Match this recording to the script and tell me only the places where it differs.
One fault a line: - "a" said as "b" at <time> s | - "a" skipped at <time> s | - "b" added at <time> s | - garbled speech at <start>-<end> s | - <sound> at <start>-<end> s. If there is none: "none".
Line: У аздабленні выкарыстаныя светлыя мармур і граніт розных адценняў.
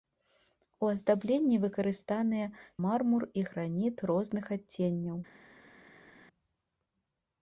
- "светлыя" skipped at 2.5 s